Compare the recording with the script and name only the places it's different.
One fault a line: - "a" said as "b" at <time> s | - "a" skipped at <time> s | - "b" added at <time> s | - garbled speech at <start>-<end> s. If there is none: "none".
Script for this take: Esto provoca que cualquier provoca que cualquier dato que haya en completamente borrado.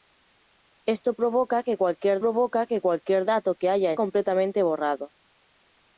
none